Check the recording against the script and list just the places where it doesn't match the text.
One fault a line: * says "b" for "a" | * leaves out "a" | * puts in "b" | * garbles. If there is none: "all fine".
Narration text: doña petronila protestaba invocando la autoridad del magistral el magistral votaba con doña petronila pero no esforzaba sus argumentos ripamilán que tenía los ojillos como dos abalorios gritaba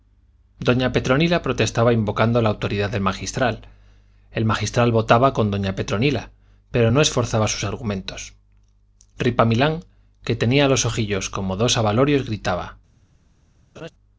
all fine